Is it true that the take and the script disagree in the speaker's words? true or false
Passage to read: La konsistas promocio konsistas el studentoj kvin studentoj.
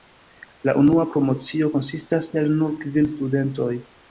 true